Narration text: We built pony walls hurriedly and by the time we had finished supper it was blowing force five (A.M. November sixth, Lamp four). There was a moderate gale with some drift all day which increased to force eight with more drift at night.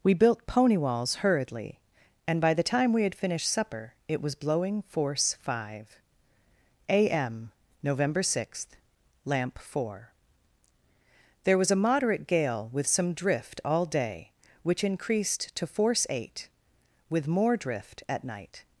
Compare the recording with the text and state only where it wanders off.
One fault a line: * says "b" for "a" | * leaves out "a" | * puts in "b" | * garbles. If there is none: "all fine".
all fine